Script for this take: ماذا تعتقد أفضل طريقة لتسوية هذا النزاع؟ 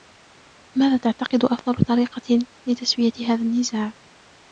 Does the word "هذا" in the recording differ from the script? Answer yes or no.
no